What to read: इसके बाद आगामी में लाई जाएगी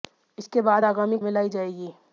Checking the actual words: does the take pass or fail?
pass